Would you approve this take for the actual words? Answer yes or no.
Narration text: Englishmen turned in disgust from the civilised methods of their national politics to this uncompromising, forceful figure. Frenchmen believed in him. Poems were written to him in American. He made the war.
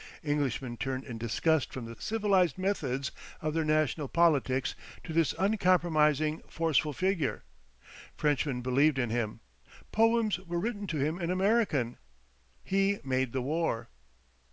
yes